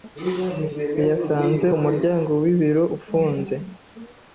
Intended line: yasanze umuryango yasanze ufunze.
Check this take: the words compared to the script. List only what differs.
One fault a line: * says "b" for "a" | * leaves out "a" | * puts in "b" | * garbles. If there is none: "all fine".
* says "wibiro" for "yasanze"